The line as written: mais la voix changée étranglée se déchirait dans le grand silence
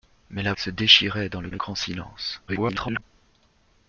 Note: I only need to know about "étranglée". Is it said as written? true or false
false